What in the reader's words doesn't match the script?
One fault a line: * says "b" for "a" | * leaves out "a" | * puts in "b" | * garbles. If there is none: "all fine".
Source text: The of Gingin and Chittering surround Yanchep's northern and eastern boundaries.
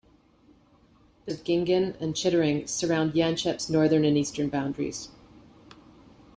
all fine